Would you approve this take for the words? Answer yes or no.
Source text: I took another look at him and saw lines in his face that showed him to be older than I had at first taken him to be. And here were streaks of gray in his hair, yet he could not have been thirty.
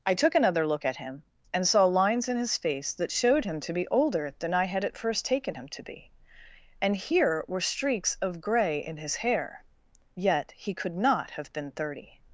yes